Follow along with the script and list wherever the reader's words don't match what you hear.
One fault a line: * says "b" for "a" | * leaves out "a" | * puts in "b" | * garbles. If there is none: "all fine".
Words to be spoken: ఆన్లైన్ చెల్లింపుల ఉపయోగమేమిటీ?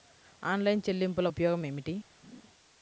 all fine